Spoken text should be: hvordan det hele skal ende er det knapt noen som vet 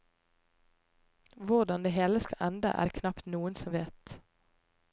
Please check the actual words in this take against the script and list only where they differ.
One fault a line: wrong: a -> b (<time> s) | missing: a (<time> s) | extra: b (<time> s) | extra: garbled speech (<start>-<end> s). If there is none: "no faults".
no faults